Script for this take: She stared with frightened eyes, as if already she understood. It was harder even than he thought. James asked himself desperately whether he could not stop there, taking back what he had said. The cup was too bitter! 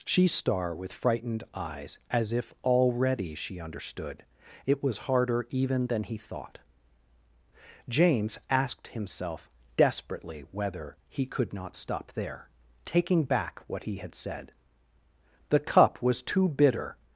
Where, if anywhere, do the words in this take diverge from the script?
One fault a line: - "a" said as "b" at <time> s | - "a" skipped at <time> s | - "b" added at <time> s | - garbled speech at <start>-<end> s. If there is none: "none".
- "stared" said as "star" at 0.3 s